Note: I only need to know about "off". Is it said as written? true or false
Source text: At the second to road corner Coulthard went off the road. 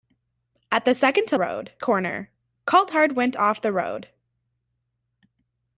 true